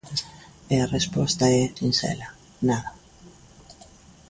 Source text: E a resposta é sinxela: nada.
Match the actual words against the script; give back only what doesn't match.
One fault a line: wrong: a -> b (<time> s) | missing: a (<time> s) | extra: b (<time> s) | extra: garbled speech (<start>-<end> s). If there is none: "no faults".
no faults